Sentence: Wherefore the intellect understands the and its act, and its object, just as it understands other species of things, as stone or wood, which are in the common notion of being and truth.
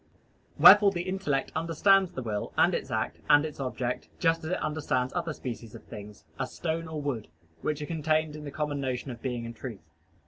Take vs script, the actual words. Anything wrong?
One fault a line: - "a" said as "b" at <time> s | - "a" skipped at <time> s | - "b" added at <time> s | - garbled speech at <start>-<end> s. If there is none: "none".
- "will" added at 2.2 s
- "contained" added at 7.9 s